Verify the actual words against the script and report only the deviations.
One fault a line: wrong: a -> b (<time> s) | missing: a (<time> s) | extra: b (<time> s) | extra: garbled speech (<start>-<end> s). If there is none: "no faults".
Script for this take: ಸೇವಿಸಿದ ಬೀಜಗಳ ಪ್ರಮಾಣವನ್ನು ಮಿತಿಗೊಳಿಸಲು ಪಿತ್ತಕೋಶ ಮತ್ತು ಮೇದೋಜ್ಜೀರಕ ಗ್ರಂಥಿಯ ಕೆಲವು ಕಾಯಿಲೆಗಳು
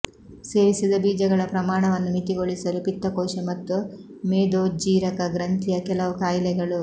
no faults